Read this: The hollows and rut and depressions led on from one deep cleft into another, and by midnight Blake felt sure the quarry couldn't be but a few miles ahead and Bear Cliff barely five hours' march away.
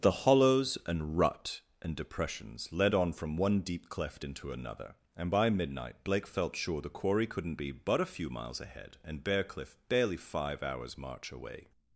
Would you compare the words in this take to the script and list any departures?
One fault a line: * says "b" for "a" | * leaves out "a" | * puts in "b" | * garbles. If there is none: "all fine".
all fine